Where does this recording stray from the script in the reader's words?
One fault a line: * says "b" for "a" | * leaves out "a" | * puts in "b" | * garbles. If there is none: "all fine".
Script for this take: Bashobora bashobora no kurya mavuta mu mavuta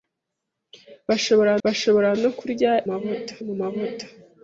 all fine